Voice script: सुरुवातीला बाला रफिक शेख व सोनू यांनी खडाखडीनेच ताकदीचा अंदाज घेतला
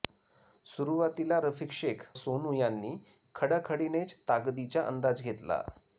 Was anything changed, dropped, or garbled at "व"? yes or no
yes